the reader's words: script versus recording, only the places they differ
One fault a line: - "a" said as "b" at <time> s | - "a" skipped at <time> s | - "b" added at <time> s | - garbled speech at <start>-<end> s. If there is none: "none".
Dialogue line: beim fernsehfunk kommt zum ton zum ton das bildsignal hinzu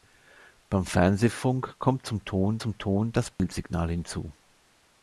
none